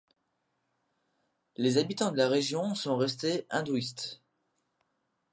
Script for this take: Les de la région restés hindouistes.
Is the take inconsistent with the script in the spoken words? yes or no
yes